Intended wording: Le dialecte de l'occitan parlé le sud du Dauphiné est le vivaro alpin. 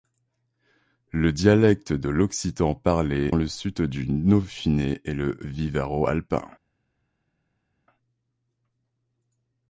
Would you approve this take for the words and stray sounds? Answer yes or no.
yes